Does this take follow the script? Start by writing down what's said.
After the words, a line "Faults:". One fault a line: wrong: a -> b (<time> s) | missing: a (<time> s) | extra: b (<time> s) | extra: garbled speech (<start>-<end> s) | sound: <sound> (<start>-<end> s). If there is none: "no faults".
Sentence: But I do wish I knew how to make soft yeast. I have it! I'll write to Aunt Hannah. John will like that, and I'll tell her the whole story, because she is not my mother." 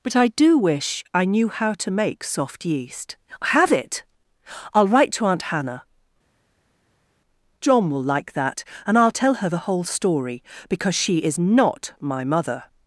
But I do wish I knew how to make soft yeast. have it! I'll write to Aunt Hannah. John will like that, and I'll tell her the whole story, because she is not my mother."
Faults:
missing: I (3.2 s)